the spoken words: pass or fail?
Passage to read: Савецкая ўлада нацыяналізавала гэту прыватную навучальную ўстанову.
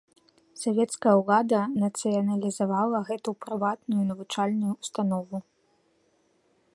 pass